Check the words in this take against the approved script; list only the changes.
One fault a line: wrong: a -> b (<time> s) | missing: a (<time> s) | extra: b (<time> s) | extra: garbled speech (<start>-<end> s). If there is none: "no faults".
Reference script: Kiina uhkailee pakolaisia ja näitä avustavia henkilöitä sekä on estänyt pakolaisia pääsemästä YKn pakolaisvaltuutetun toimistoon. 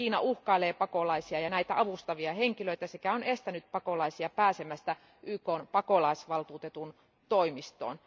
no faults